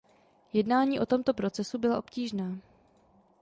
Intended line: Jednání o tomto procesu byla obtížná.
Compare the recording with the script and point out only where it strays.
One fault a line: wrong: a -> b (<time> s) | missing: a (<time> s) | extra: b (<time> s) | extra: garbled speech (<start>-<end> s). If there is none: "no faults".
no faults